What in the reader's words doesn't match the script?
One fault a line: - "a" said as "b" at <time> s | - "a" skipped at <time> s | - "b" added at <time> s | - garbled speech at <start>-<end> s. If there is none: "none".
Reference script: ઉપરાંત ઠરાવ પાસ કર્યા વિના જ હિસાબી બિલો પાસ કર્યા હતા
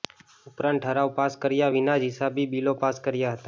none